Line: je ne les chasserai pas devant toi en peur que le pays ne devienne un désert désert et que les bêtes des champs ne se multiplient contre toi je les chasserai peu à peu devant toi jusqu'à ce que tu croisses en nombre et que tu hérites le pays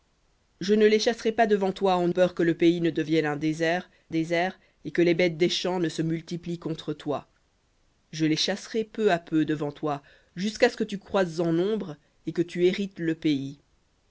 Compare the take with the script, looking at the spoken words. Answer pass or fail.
pass